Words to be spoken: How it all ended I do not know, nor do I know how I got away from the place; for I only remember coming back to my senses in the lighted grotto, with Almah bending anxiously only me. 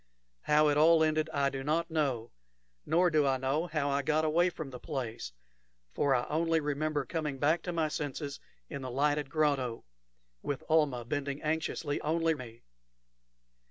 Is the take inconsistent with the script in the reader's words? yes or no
no